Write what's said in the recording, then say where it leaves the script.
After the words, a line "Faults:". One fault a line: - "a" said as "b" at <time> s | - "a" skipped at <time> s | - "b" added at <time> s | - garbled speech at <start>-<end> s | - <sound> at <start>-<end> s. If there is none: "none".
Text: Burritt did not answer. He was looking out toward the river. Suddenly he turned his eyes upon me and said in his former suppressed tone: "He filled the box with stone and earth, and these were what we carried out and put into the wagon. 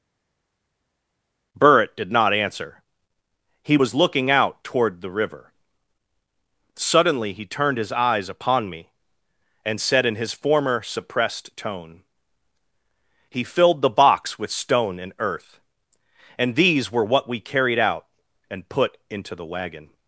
Burritt did not answer. He was looking out toward the river. Suddenly he turned his eyes upon me and said in his former suppressed tone: "He filled the box with stone and earth, and these were what we carried out and put into the wagon.
Faults:
none